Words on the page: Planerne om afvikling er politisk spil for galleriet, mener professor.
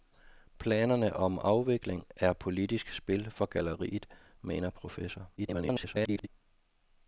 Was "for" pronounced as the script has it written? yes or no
yes